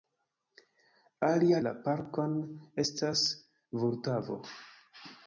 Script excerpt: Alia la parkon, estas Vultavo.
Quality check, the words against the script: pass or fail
pass